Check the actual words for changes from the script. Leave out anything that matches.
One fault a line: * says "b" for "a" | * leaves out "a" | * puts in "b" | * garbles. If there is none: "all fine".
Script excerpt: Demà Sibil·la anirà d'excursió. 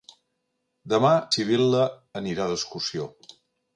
all fine